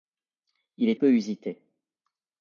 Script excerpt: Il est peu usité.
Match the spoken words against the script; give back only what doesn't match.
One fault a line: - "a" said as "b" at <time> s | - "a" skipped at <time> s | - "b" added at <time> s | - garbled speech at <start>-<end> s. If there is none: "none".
none